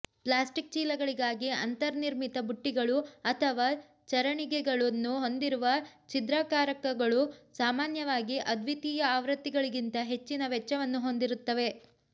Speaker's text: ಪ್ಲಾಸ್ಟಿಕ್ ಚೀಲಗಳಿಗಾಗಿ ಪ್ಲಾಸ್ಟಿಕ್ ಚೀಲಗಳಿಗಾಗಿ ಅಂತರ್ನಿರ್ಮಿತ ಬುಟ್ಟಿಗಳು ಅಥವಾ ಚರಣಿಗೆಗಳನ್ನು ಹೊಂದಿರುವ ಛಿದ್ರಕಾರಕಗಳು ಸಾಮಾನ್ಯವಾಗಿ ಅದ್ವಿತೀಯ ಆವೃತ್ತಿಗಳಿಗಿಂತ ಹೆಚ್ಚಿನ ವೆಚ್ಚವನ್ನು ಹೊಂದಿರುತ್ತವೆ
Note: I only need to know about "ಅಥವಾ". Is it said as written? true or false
true